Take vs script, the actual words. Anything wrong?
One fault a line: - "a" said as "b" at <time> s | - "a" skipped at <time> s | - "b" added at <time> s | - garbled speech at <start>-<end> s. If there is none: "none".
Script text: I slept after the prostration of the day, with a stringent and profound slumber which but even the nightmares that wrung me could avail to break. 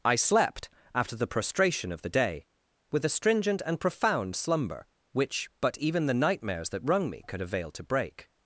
none